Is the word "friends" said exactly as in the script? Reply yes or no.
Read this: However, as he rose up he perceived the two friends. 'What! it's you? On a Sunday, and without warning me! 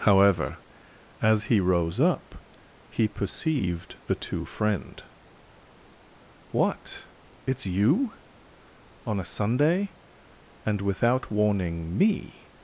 no